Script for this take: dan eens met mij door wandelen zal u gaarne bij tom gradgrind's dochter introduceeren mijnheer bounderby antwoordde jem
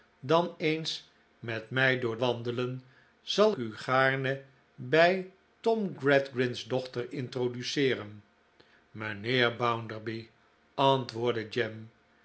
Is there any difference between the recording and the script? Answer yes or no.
no